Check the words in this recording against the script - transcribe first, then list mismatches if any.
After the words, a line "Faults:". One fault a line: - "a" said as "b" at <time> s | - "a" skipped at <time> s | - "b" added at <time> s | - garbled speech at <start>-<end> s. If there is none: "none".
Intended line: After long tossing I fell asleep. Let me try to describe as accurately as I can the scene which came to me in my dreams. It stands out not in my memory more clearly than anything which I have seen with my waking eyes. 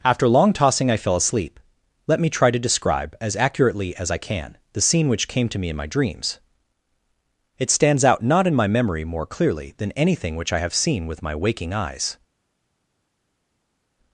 After long tossing I fell asleep. Let me try to describe as accurately as I can the scene which came to me in my dreams. It stands out not in my memory more clearly than anything which I have seen with my waking eyes.
Faults:
none